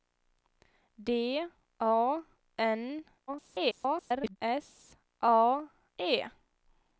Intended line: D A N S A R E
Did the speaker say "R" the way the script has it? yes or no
no